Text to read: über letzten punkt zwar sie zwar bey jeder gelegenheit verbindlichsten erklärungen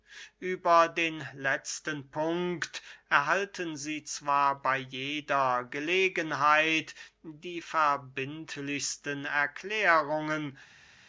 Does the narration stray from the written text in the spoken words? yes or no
yes